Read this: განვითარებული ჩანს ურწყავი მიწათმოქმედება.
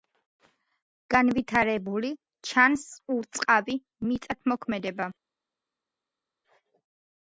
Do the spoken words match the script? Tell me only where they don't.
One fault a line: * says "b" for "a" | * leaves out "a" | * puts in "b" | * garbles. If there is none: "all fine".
all fine